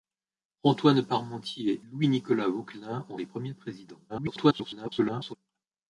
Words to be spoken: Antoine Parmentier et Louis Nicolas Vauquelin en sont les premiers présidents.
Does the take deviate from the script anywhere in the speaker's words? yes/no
yes